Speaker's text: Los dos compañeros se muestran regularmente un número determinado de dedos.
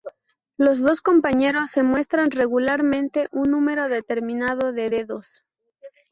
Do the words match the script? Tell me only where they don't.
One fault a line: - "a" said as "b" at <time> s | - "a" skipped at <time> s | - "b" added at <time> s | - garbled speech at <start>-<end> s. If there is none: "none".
none